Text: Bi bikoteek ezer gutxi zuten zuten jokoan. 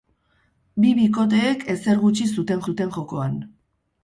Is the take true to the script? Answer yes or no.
yes